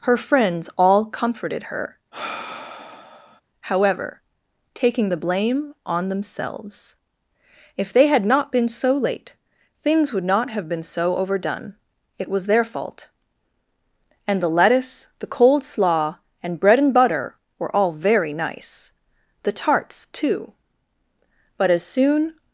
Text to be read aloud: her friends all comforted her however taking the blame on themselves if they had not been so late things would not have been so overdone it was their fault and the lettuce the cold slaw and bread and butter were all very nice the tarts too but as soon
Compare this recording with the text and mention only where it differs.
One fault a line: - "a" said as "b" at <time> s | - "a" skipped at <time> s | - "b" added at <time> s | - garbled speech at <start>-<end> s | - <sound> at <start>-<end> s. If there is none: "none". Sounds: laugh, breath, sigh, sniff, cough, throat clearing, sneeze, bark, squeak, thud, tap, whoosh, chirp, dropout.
- sigh at 2.1-3.4 s